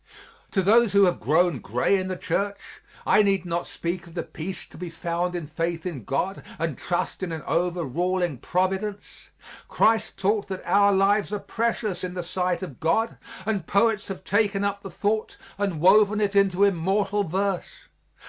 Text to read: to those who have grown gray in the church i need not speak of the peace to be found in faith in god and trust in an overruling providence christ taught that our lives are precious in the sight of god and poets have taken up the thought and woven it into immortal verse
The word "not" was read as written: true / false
true